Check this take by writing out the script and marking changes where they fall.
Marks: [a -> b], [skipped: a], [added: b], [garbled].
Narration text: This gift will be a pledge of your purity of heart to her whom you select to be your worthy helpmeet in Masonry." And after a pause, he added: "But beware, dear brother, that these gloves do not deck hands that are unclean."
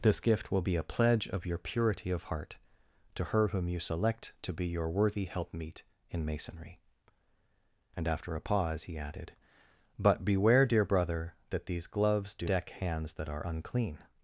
This gift will be a pledge of your purity of heart to her whom you select to be your worthy helpmeet in Masonry." And after a pause, he added: "But beware, dear brother, that these gloves do [skipped: not] deck hands that are unclean."